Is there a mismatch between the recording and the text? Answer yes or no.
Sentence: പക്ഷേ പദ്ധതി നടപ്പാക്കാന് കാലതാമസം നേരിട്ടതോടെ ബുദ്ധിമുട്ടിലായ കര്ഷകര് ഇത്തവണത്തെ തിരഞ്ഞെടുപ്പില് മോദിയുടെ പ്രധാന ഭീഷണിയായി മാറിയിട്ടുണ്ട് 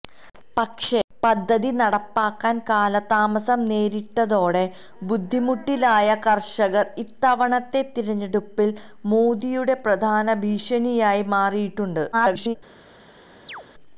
yes